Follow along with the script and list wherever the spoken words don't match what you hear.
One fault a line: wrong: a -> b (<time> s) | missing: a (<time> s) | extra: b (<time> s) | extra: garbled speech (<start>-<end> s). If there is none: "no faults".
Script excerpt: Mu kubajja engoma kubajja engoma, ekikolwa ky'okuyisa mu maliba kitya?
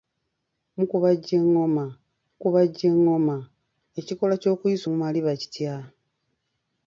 no faults